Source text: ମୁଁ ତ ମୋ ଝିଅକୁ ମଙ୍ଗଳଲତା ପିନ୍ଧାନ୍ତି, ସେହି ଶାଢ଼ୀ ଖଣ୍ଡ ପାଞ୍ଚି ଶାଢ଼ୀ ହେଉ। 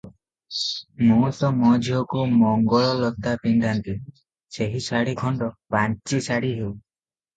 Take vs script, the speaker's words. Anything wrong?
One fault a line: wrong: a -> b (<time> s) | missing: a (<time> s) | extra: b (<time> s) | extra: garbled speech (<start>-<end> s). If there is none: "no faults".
no faults